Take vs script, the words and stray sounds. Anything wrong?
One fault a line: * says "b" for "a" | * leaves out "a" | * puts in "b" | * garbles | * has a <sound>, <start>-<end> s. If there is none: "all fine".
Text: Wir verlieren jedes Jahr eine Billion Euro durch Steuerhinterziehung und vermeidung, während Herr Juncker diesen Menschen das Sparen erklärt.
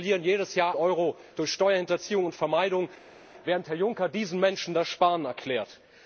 * leaves out "eine Billion"